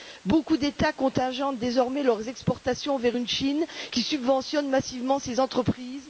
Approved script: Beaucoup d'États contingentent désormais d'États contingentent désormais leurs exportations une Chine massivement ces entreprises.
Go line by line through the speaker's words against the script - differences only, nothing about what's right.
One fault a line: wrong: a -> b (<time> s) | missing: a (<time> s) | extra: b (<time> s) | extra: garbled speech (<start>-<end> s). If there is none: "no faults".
missing: d'États contingentent désormais (2.0 s)
extra: vers (3.0 s)
extra: qui subventionne (3.9 s)